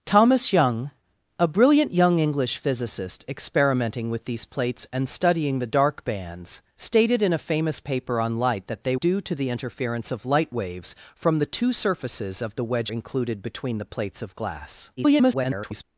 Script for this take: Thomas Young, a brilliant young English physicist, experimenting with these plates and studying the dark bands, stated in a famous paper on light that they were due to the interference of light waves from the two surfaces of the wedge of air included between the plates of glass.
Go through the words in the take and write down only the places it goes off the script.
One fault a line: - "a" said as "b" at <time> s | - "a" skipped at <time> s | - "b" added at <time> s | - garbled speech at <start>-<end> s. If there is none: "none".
- "were" skipped at 8.9 s
- "of air" skipped at 12.9 s
- garbled speech at 15.0-15.8 s